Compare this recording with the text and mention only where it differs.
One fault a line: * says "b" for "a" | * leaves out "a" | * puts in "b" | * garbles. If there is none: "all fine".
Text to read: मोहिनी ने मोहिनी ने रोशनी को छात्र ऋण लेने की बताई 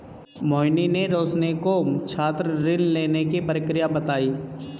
* leaves out "मोहिनी ने"
* puts in "प्रक्रिया"